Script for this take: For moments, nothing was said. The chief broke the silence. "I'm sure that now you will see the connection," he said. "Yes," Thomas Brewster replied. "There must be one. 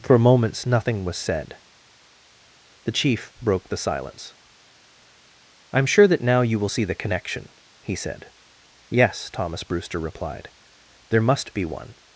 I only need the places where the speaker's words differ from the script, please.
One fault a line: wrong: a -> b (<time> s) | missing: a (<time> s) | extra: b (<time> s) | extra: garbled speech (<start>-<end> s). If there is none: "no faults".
no faults